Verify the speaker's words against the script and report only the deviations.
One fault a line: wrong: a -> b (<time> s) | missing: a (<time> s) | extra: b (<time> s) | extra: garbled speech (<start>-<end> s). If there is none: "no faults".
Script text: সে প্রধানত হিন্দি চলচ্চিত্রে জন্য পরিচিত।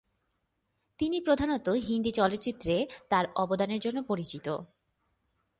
wrong: সে -> তিনি (1.0 s)
extra: তার অবদানের (3.1 s)